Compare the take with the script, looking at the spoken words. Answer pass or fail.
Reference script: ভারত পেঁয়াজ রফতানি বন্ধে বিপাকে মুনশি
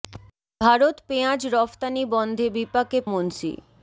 pass